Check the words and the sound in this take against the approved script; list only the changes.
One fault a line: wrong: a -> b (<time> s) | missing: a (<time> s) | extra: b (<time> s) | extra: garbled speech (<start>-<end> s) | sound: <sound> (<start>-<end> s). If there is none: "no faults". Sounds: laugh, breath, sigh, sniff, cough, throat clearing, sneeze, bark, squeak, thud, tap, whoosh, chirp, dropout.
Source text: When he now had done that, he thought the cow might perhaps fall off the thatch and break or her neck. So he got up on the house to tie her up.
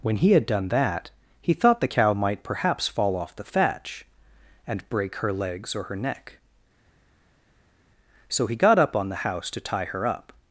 missing: now (0.3 s)
extra: her legs (5.2 s)